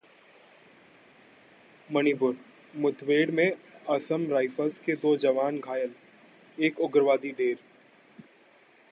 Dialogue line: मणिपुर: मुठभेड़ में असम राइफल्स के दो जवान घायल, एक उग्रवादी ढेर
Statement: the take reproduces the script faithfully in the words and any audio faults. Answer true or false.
true